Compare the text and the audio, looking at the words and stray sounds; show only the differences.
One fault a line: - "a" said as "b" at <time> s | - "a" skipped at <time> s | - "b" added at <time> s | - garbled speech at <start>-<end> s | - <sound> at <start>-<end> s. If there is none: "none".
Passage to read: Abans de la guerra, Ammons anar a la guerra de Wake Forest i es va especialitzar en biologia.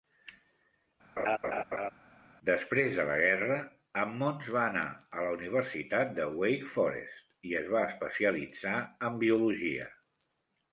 - laugh at 1.2-1.9 s
- "Abans" said as "Després" at 2.5 s
- "va" added at 4.6 s
- "guerra" said as "universitat" at 5.4 s